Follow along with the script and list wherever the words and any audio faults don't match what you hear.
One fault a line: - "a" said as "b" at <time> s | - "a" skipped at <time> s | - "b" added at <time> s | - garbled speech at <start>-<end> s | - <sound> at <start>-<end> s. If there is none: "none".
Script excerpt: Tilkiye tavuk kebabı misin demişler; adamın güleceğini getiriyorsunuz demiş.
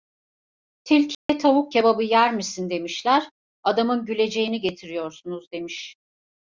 - dropout at 1.1-1.3 s
- "yer" added at 2.0 s